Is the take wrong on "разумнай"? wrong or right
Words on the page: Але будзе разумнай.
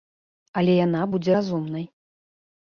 right